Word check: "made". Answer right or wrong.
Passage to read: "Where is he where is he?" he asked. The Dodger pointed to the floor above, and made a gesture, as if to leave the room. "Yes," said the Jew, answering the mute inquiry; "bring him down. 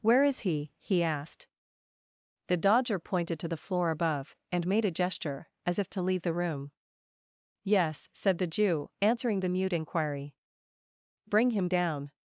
right